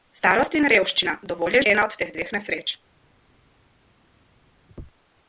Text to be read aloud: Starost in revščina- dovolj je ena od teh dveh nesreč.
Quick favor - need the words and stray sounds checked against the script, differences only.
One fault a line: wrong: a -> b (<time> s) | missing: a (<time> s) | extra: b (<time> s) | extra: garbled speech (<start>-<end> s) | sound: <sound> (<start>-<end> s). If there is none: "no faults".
no faults